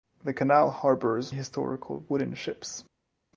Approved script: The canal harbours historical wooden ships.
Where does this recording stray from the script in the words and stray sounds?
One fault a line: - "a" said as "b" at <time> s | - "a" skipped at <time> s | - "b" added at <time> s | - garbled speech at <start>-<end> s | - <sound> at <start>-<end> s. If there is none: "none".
none